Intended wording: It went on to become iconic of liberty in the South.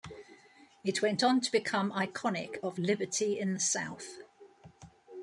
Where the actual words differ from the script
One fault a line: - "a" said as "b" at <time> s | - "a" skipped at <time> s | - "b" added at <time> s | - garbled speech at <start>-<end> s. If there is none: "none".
none